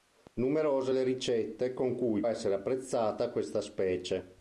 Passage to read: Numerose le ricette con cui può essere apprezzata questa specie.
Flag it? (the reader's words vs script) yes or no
yes